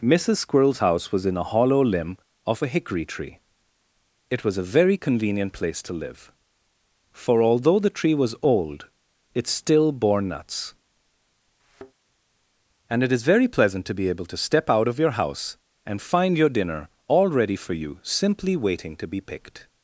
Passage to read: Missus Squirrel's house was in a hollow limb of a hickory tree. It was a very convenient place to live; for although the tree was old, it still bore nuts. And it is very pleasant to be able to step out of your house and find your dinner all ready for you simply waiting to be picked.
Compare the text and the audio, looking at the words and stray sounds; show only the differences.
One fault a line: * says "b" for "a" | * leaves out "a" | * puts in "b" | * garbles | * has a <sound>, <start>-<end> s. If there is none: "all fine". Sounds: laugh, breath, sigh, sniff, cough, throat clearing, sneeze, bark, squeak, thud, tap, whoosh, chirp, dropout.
* has a thud, 11.6-11.9 s